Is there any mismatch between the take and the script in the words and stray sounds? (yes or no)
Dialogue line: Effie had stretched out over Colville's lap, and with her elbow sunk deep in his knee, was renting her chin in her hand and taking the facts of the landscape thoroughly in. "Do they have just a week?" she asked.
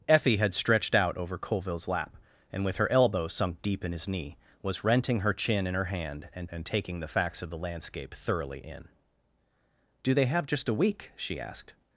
yes